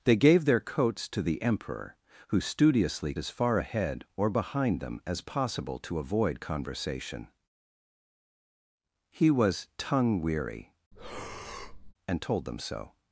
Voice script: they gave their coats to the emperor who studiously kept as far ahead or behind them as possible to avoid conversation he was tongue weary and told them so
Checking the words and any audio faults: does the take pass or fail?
fail